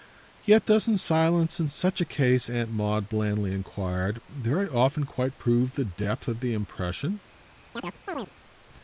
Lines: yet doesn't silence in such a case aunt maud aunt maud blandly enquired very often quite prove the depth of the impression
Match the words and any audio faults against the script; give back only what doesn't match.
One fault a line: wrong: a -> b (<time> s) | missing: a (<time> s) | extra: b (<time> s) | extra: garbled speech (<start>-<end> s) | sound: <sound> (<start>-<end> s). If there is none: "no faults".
missing: aunt maud (3.1 s)
sound: chirp (7.8-8.3 s)